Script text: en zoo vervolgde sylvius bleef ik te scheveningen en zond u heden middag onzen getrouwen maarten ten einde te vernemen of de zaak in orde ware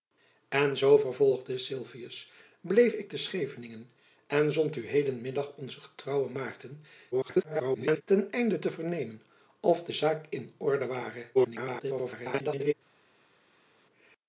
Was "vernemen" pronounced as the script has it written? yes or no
yes